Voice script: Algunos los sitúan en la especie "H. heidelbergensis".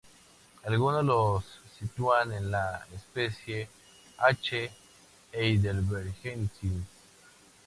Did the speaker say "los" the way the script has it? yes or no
yes